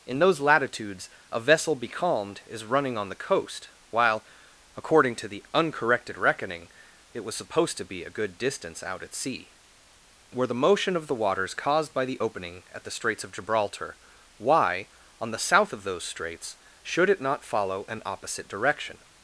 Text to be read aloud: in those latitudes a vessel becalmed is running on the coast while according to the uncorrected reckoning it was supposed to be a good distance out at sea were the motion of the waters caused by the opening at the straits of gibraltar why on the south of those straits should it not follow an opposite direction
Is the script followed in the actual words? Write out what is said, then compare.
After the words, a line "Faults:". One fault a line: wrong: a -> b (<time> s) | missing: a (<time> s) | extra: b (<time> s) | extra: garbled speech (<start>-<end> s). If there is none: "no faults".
in those latitudes a vessel becalmed is running on the coast while according to the uncorrected reckoning it was supposed to be a good distance out at sea were the motion of the waters caused by the opening at the straits of gibraltar why on the south of those straits should it not follow an opposite direction
Faults:
no faults